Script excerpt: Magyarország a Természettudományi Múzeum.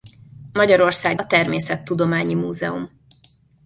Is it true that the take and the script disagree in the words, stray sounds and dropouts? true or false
false